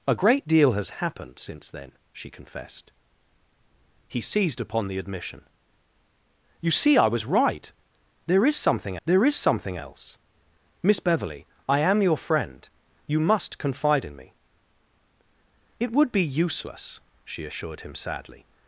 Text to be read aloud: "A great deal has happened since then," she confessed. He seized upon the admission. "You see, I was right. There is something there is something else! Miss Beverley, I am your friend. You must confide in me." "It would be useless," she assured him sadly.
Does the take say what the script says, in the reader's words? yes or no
yes